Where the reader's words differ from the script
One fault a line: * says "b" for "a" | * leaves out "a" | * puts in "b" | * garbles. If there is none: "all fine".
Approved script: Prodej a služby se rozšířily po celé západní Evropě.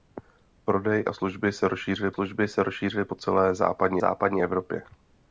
* puts in "služby se rozšířily"
* puts in "západní"